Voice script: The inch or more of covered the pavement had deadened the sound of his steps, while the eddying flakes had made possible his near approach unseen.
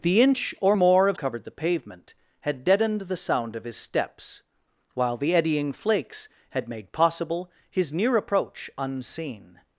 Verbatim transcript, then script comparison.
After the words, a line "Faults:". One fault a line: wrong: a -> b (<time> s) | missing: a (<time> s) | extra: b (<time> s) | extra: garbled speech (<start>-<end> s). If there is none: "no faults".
The inch or more of covered the pavement had deadened the sound of his steps, while the eddying flakes had made possible his near approach unseen.
Faults:
no faults